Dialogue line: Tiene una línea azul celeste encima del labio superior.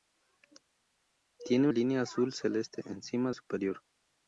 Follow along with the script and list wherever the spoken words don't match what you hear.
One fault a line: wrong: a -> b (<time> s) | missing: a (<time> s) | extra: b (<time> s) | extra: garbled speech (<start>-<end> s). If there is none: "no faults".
missing: una (1.7 s)
missing: del labio (3.3 s)